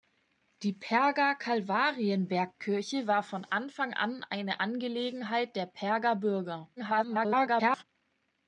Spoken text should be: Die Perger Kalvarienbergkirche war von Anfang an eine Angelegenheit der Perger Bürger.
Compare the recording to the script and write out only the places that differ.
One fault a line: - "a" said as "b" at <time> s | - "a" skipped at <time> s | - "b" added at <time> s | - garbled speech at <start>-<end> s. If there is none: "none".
- garbled speech at 6.8-7.8 s